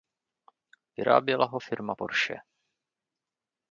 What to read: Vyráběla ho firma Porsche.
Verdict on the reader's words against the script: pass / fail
pass